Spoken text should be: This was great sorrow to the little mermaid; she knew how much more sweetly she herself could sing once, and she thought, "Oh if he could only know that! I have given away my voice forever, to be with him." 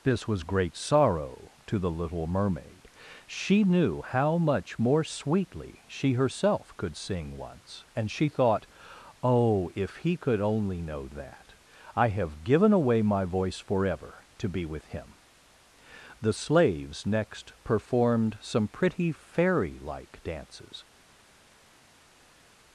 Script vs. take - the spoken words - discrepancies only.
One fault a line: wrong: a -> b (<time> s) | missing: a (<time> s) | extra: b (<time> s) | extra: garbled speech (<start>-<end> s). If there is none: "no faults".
extra: The slaves next performed some pretty fairy like dances (16.2 s)